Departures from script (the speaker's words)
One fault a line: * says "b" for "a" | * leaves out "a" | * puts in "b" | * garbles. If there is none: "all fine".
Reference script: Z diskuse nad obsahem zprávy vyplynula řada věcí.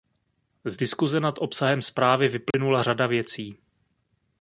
all fine